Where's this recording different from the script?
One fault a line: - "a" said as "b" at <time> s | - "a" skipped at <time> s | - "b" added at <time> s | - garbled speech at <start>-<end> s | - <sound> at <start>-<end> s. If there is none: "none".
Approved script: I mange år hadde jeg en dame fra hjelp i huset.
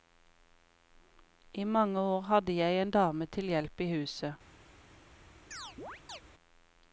- "fra" said as "til" at 3.4 s
- chirp at 5.5-6.2 s